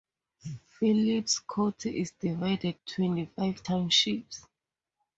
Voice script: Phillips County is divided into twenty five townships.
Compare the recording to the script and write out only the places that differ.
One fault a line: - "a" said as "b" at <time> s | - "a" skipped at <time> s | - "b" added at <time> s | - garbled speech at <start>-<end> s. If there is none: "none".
- "into" skipped at 2.8 s